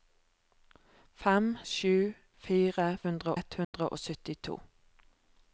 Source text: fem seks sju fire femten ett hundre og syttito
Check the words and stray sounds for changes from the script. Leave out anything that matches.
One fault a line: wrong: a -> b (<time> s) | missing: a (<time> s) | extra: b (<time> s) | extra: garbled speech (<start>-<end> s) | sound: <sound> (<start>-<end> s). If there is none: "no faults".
missing: seks (1.5 s)
wrong: femten -> hundre (3.1 s)
sound: dropout (3.6-3.7 s)